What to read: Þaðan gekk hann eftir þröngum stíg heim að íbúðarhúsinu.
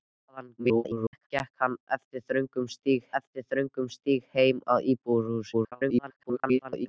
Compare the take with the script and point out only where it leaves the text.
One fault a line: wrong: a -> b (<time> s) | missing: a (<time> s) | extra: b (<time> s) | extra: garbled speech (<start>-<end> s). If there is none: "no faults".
extra: garbled speech (0.6-1.3 s)
extra: eftir þröngum stíg (3.2 s)
extra: garbled speech (5.5-6.9 s)